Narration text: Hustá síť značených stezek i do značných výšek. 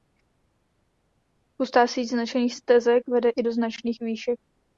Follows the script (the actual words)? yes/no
no